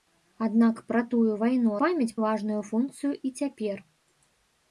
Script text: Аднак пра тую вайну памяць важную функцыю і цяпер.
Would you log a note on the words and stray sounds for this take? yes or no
no